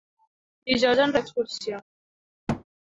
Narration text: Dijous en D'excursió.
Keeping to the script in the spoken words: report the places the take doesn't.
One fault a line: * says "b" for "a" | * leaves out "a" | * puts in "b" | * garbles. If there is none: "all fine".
all fine